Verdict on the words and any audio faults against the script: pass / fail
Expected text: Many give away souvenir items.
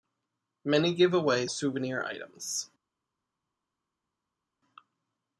pass